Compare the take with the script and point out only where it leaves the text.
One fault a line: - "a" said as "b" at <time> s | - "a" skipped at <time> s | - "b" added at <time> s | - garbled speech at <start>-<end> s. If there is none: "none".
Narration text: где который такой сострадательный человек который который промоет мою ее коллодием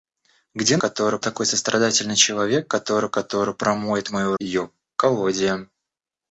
none